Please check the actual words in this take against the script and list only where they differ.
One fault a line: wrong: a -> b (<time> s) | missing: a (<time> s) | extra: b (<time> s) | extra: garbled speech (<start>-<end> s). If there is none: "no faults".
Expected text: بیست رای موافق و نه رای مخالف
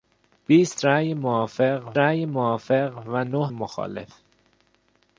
extra: رای موافق (2.0 s)
missing: رای (3.5 s)